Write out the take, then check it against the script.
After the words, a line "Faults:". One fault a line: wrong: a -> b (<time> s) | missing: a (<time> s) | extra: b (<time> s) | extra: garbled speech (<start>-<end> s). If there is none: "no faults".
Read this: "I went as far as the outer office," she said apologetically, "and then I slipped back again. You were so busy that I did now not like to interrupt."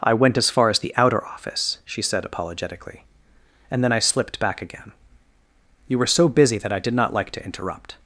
"I went as far as the outer office," she said apologetically, "and then I slipped back again. You were so busy that I did not like to interrupt."
Faults:
missing: now (6.9 s)